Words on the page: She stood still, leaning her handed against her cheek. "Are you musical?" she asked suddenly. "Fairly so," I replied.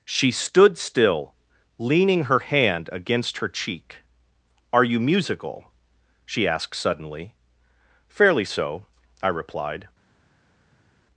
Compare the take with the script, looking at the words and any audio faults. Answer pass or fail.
fail